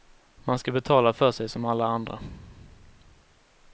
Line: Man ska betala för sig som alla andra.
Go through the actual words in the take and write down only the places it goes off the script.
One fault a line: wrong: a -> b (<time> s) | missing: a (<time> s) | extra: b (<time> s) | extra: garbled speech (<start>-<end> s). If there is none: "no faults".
no faults